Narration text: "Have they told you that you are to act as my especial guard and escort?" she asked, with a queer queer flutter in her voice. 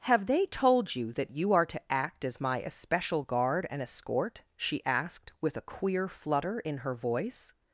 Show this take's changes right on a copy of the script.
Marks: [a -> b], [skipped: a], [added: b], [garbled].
"Have they told you that you are to act as my especial guard and escort?" she asked, with a queer [skipped: queer] flutter in her voice.